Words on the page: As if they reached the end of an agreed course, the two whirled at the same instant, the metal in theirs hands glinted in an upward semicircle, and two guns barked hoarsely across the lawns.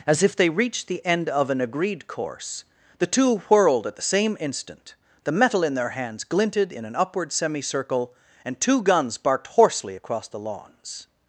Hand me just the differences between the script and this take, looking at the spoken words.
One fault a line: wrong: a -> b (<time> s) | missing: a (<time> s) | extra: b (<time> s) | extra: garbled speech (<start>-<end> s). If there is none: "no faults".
wrong: theirs -> their (5.8 s)